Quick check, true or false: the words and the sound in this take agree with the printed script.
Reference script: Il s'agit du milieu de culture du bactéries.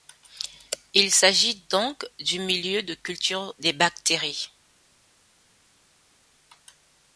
false